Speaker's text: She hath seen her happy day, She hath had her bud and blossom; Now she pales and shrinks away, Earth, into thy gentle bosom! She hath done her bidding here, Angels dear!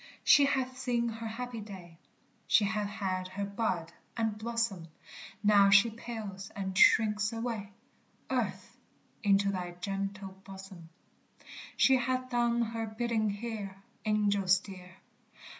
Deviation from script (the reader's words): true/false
false